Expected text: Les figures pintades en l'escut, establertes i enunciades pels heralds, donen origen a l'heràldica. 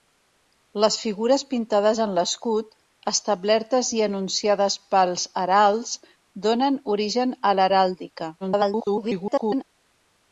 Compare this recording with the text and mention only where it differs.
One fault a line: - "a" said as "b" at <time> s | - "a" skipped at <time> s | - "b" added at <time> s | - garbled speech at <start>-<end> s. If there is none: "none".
- garbled speech at 8.4-9.6 s